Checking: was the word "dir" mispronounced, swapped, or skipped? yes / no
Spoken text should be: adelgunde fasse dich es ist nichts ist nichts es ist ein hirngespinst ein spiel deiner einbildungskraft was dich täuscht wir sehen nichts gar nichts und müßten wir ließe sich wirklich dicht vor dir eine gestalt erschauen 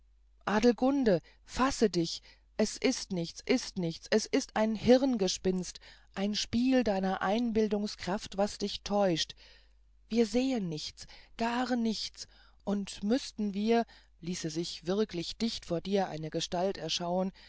no